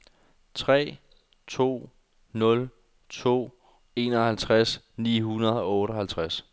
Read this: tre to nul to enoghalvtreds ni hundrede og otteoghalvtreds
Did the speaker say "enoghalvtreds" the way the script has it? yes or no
yes